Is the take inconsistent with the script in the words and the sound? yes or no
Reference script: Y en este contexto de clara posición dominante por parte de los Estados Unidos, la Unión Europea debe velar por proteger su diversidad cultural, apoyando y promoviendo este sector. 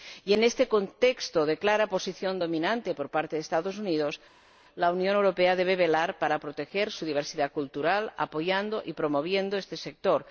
no